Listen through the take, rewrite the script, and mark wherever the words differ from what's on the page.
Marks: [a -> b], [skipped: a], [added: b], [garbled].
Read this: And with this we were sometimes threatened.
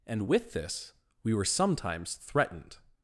And with this we were sometimes threatened.